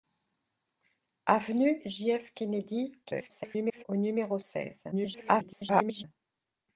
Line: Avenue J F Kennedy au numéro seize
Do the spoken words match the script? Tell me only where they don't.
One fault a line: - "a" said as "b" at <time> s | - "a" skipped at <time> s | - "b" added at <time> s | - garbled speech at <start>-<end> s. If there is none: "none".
- garbled speech at 3.0-3.8 s
- garbled speech at 4.9-6.0 s